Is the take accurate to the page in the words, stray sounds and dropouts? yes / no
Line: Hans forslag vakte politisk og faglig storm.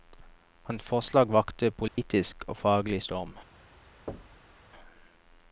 no